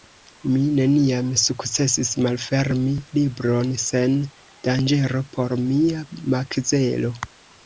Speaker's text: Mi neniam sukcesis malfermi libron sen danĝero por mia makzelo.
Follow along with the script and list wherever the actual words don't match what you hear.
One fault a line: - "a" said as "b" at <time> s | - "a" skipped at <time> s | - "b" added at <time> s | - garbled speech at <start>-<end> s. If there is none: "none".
none